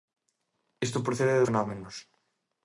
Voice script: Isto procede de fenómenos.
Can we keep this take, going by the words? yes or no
yes